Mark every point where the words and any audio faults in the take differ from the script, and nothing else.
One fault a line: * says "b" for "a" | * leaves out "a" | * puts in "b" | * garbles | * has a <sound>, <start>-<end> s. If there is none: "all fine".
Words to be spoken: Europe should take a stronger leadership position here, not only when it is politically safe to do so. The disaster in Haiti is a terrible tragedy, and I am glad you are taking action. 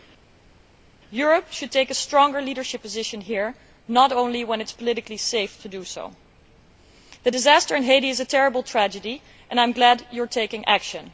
all fine